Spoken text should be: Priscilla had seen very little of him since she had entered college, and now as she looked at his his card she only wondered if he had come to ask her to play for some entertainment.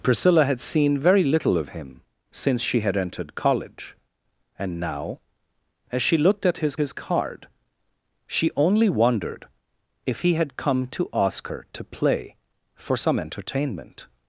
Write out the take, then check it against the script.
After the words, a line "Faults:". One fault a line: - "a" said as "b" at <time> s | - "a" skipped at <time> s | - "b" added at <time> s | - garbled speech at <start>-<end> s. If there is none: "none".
Priscilla had seen very little of him since she had entered college, and now as she looked at his his card she only wondered if he had come to ask her to play for some entertainment.
Faults:
none